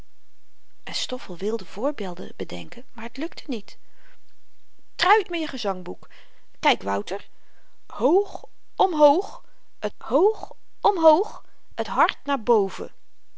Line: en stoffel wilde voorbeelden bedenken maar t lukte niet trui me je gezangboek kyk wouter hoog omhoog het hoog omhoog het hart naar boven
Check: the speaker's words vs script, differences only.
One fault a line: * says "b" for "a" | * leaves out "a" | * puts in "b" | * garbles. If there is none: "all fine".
all fine